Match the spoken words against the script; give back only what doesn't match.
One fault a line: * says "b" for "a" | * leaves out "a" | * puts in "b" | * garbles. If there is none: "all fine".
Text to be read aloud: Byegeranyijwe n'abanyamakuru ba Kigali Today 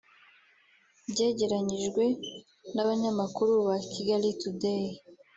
all fine